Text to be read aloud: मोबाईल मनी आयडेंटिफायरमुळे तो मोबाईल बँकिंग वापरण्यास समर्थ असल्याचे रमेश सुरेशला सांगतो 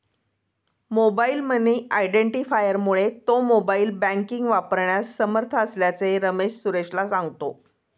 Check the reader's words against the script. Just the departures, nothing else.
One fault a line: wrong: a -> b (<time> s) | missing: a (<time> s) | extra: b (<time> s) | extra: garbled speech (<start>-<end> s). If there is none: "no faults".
no faults